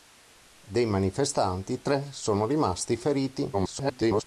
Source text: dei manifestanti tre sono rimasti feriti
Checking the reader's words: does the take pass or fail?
fail